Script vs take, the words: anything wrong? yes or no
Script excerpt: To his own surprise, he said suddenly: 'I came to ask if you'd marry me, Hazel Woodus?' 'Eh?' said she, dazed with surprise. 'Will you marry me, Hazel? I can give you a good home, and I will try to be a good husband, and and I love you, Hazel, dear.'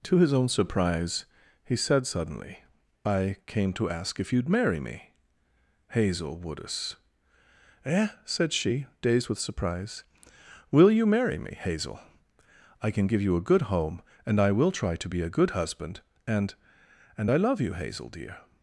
no